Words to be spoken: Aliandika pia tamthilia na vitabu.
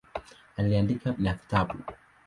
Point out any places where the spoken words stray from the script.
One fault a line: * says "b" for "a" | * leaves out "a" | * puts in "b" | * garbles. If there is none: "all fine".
* leaves out "pia tamthilia"